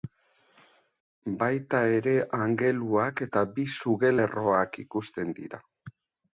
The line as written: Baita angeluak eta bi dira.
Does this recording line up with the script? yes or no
no